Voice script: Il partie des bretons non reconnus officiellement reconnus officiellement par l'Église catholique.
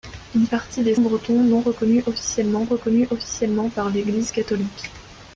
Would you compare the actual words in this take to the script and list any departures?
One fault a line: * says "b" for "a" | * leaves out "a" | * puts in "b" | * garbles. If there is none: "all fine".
all fine